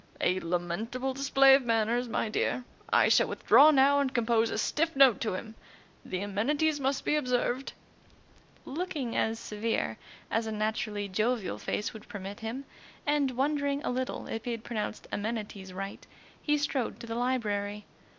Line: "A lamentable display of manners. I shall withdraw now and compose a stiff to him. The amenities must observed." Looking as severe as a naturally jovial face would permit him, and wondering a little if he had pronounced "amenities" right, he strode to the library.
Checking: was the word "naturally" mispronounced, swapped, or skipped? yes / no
no